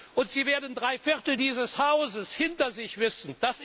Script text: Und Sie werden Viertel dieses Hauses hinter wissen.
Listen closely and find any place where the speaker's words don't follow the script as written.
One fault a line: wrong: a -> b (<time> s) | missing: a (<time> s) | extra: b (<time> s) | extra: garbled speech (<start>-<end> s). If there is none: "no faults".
extra: drei (0.8 s)
extra: sich (2.7 s)